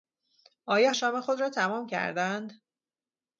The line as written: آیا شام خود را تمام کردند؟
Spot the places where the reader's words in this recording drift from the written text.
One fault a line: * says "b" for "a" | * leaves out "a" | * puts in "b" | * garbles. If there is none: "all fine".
all fine